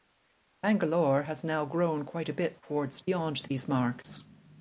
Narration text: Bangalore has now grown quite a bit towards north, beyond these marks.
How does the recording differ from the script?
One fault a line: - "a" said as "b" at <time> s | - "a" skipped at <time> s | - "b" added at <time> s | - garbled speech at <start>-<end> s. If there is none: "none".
- "north" skipped at 3.0 s